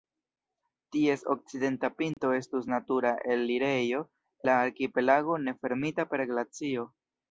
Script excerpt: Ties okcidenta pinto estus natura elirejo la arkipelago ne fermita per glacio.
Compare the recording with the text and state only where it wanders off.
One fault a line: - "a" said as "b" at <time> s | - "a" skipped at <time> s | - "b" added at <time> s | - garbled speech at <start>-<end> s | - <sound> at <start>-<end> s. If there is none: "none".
- dropout at 2.1-2.2 s